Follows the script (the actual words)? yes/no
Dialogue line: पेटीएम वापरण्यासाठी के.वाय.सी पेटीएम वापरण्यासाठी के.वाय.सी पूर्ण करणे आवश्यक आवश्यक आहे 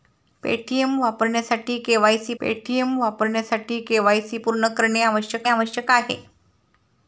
yes